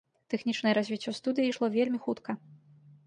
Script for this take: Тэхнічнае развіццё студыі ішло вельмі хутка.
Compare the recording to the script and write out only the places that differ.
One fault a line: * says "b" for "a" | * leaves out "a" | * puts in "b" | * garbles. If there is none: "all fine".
all fine